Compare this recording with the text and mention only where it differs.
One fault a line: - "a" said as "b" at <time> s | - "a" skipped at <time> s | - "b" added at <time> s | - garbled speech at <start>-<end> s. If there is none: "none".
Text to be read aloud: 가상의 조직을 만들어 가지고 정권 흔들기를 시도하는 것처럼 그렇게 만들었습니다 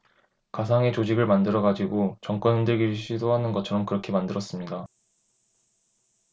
none